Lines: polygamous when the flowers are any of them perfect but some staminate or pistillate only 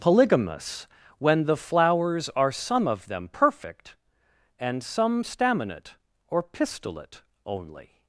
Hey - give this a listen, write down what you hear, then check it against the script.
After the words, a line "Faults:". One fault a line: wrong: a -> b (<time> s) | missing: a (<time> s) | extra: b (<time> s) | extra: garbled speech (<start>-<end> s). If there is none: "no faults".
polygamous when the flowers are some of them perfect and some staminate or pistillate only
Faults:
wrong: any -> some (2.5 s)
wrong: but -> and (4.6 s)